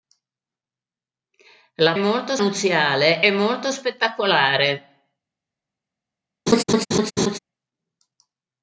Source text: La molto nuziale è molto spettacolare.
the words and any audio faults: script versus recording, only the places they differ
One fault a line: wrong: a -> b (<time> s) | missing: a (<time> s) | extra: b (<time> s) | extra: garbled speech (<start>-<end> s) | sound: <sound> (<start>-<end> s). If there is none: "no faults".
sound: laugh (6.5-7.4 s)